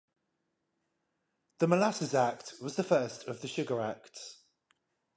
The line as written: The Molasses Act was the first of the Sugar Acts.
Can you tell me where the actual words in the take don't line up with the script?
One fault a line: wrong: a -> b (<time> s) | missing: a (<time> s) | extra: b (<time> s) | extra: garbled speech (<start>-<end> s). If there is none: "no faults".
no faults